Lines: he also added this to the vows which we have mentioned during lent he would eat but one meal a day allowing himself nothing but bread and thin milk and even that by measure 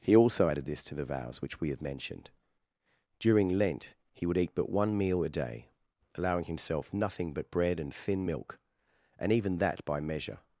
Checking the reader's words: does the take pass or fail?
pass